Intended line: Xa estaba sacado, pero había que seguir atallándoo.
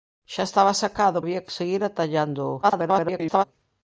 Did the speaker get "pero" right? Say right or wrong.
wrong